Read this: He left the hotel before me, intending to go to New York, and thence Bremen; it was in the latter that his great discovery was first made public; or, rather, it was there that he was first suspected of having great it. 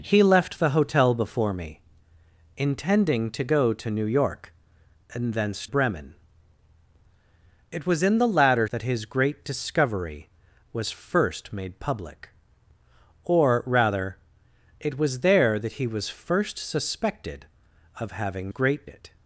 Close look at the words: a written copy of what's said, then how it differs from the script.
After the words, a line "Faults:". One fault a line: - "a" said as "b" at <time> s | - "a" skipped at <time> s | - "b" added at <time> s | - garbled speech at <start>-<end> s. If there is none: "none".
He left the hotel before me, intending to go to New York, and thence Bremen; it was in the latter that his great discovery was first made public; or, rather, it was there that he was first suspected of having great it.
Faults:
none